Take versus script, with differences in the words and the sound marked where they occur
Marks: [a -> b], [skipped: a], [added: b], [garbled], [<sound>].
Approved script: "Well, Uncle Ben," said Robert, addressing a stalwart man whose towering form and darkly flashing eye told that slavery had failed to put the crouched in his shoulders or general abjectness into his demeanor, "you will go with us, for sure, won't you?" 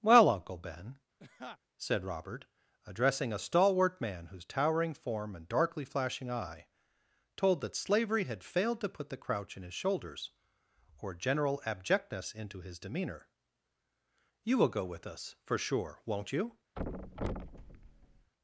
"Well, Uncle Ben," [laugh] said Robert, addressing a stalwart man whose towering form and darkly flashing eye told that slavery had failed to put the [crouched -> crouch] in his shoulders or general abjectness into his demeanor, "you will go with us, for sure, won't you?" [thud]